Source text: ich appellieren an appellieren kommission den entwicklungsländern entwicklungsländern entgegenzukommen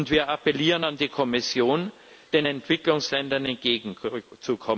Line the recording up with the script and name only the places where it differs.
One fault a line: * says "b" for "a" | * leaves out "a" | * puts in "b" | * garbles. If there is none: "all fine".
* says "wir" for "ich"
* says "die" for "appellieren"
* leaves out "entwicklungsländern"